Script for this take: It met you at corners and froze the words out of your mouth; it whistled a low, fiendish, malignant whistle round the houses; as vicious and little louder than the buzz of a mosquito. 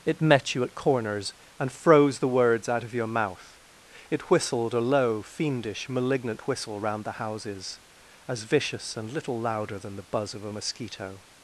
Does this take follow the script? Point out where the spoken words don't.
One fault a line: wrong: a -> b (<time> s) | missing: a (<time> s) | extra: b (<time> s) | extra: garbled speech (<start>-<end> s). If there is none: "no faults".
no faults